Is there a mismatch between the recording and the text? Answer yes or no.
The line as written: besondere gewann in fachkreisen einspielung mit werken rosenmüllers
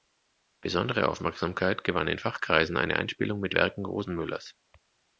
yes